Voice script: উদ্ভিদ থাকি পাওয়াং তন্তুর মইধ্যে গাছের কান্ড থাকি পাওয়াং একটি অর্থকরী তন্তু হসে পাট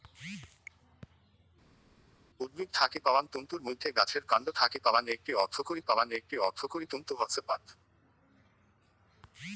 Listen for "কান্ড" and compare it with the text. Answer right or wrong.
right